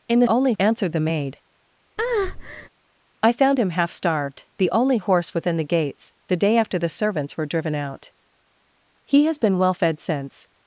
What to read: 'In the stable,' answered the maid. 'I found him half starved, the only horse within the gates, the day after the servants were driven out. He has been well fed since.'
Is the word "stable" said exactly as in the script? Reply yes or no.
no